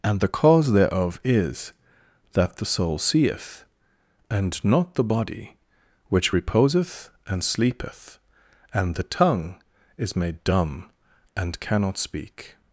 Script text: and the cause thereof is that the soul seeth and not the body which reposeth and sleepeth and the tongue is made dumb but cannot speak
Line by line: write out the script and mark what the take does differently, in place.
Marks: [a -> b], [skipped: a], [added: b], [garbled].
and the cause thereof is that the soul seeth and not the body which reposeth and sleepeth and the tongue is made dumb [but -> and] cannot speak